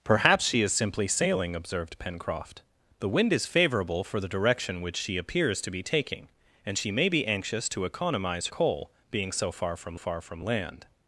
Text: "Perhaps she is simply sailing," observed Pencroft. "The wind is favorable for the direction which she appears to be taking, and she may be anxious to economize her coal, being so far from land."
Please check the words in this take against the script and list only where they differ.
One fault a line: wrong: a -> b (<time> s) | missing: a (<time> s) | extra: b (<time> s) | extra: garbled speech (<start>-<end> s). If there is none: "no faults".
missing: her (8.5 s)
extra: far from (10.0 s)